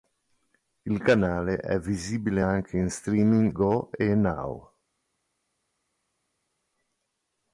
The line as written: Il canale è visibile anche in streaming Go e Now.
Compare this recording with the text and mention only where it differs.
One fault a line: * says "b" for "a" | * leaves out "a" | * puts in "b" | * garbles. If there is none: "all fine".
all fine